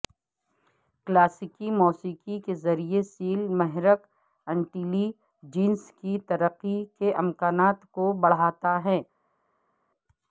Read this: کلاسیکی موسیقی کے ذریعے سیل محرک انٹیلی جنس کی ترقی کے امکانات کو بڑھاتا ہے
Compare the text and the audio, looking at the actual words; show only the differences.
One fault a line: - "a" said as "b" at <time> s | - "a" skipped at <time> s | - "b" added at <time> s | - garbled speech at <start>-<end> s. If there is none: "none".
none